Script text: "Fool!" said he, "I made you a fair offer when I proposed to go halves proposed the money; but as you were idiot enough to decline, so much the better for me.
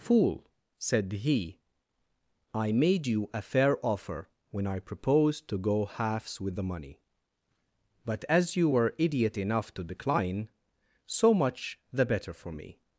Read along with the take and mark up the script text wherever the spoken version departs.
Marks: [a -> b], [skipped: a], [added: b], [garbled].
"Fool!" said he, "I made you a fair offer when I proposed to go halves [proposed -> with] the money; but as you were idiot enough to decline, so much the better for me.